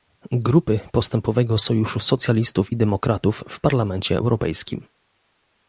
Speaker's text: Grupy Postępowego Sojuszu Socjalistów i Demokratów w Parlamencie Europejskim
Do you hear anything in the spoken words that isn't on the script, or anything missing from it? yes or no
no